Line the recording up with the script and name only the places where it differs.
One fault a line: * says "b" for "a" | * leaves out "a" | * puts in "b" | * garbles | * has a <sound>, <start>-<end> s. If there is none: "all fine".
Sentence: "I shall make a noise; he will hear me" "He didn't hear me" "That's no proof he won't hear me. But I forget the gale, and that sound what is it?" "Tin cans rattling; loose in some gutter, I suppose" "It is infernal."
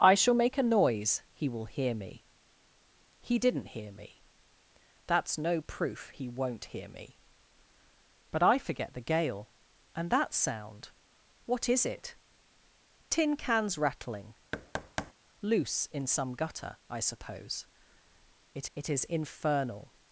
* has a thud, 14.5-15.1 s
* puts in "it"